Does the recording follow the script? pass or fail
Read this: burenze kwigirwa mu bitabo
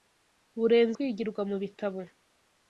pass